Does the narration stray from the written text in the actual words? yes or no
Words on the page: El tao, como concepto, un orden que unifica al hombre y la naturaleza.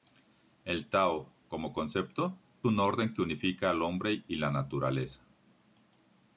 no